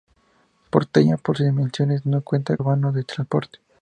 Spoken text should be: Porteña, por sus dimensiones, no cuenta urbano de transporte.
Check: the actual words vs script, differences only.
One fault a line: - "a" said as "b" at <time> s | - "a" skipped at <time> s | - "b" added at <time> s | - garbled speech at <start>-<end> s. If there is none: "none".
none